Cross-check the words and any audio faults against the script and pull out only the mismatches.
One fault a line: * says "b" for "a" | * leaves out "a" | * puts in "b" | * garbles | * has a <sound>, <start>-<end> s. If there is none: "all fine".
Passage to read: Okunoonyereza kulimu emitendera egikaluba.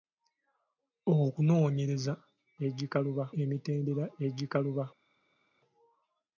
* says "egikaluba" for "kulimu"